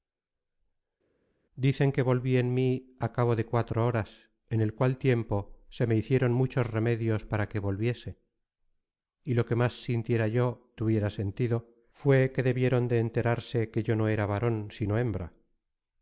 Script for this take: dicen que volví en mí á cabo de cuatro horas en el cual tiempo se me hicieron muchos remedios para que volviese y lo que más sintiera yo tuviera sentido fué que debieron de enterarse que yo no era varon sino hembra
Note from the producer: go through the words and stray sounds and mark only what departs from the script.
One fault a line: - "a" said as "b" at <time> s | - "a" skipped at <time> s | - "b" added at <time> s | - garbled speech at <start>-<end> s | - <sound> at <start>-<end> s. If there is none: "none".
none